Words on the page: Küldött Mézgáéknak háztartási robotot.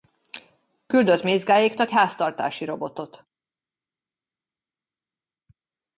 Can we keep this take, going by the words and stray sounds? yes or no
yes